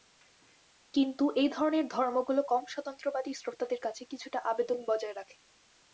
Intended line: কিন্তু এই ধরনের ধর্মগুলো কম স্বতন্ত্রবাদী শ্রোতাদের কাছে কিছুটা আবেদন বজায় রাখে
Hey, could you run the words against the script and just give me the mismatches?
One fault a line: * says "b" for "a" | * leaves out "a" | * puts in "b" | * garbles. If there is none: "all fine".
all fine